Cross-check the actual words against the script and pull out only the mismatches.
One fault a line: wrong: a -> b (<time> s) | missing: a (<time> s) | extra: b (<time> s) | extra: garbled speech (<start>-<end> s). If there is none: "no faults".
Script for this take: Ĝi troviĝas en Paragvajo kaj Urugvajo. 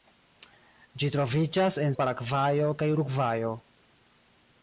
no faults